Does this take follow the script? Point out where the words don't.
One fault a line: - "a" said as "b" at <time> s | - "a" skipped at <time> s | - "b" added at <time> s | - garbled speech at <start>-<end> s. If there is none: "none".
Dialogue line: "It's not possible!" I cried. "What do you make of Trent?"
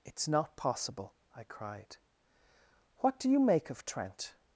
none